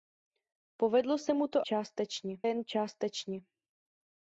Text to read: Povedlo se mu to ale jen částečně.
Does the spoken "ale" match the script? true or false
false